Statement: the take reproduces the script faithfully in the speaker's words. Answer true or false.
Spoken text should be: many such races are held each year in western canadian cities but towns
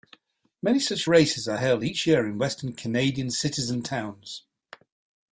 false